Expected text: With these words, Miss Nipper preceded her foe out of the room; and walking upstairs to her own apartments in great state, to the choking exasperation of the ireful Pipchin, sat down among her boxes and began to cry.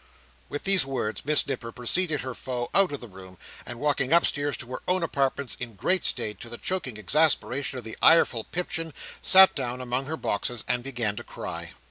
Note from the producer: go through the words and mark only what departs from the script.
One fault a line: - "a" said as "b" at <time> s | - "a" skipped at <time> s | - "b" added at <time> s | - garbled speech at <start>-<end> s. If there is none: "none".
none